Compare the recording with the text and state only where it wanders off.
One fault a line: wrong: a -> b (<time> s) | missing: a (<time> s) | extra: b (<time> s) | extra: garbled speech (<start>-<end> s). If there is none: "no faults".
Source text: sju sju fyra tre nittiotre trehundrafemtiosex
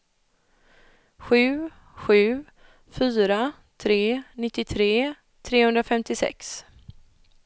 no faults